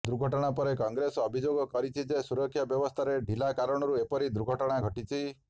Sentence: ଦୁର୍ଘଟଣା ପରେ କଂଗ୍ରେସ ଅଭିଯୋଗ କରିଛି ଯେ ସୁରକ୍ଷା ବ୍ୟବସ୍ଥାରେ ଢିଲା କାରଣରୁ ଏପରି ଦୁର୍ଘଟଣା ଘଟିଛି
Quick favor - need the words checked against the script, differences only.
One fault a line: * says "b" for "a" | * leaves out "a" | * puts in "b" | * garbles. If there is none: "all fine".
all fine